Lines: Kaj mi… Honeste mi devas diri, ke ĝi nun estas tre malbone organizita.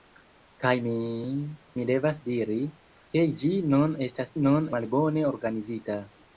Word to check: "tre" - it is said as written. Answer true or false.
false